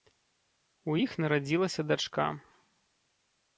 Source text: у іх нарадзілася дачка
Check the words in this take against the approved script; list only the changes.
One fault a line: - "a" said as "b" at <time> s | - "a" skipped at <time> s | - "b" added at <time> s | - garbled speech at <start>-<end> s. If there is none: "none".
none